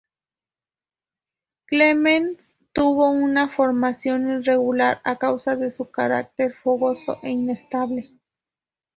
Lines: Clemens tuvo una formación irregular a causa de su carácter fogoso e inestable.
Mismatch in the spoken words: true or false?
false